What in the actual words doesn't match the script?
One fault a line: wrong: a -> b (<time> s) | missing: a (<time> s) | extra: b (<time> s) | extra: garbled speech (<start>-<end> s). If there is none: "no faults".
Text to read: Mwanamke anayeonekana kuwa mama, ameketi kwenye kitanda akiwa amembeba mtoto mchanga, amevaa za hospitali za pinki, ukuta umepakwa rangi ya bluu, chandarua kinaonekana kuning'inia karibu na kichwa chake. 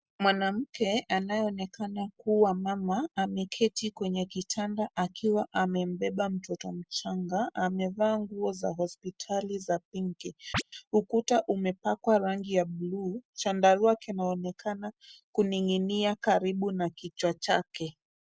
extra: nguo (8.2 s)